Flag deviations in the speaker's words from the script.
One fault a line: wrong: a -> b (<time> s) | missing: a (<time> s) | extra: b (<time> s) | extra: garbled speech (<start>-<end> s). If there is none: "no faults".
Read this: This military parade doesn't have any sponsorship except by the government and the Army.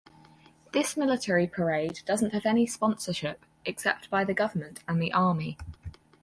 no faults